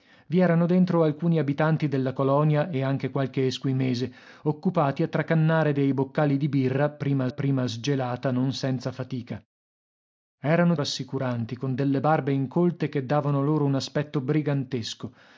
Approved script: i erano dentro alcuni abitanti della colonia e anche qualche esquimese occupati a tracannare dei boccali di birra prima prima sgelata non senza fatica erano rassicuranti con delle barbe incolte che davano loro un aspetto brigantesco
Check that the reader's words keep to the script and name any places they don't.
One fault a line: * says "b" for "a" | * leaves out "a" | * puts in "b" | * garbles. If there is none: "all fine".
all fine